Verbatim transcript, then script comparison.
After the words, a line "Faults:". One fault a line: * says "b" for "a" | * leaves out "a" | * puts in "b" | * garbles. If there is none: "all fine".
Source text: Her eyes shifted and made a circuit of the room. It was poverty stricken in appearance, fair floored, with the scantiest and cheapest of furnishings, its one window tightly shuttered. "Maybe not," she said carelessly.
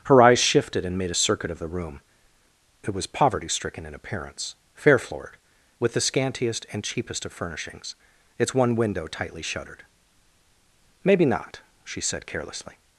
Her eyes shifted and made a circuit of the room. It was poverty stricken in appearance, fair floored, with the scantiest and cheapest of furnishings, its one window tightly shuttered. "Maybe not," she said carelessly.
Faults:
all fine